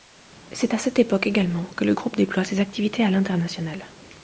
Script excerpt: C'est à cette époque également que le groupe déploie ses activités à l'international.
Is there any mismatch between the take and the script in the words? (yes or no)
no